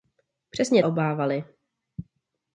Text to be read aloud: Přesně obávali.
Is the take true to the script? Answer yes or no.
yes